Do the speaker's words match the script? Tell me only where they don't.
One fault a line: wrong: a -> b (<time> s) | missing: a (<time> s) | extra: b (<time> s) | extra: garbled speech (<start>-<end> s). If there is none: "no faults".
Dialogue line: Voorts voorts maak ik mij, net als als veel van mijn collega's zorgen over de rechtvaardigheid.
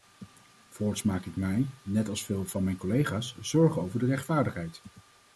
missing: voorts (1.0 s)
missing: als (2.2 s)